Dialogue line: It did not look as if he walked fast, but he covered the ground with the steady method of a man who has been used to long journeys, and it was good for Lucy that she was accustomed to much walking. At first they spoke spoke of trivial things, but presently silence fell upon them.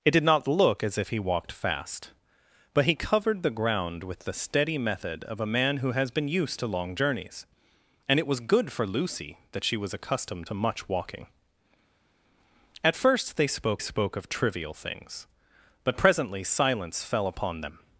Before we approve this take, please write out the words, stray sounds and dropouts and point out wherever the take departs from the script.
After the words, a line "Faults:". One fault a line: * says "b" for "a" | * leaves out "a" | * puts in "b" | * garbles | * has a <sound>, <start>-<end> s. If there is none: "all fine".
It did not look as if he walked fast, but he covered the ground with the steady method of a man who has been used to long journeys, and it was good for Lucy that she was accustomed to much walking. At first they spoke spoke of trivial things, but presently silence fell upon them.
Faults:
all fine